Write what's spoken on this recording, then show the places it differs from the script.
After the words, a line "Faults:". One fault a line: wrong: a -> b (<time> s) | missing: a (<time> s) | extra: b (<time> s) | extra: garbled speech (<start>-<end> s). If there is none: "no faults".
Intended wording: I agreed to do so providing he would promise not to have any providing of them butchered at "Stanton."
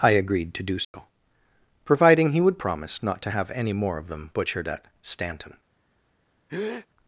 I agreed to do so providing he would promise not to have any more of them butchered at "Stanton."
Faults:
wrong: providing -> more (3.7 s)